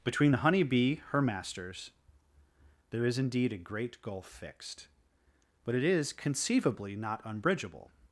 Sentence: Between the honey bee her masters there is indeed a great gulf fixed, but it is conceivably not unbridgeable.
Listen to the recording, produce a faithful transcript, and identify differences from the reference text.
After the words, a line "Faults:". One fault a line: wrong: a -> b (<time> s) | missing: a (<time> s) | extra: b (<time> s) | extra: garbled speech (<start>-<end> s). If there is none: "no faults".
Between the honey bee her masters there is indeed a great gulf fixed, but it is conceivably not unbridgeable.
Faults:
no faults